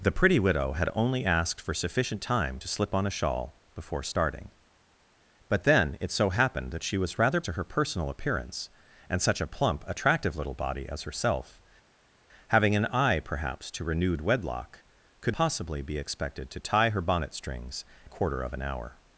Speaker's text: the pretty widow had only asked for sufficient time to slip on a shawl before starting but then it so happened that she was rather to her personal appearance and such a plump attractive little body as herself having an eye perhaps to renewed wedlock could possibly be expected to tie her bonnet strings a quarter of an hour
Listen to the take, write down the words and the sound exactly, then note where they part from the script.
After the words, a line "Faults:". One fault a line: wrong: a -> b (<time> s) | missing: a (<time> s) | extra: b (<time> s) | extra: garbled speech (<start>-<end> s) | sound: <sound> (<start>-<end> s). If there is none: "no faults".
the pretty widow had only asked for sufficient time to slip on a shawl before starting but then it so happened that she was rather to her personal appearance and such a plump attractive little body as herself having an eye perhaps to renewed wedlock could possibly be expected to tie her bonnet strings a quarter of an hour
Faults:
no faults